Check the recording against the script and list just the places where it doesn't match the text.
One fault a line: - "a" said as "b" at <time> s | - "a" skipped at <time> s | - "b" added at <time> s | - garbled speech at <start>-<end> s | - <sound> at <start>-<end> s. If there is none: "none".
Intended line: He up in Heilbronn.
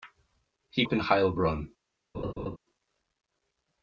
- laugh at 2.1-2.6 s